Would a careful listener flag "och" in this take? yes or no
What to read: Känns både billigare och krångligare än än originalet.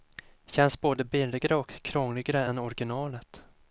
no